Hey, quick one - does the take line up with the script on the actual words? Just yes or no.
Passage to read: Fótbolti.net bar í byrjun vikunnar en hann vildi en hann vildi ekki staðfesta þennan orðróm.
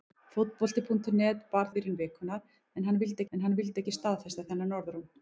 yes